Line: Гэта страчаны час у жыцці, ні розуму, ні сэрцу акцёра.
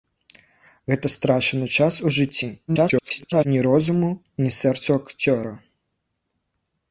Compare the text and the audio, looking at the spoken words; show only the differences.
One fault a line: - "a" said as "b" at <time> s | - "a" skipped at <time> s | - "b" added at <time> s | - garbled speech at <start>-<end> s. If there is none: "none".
- garbled speech at 2.7-3.4 s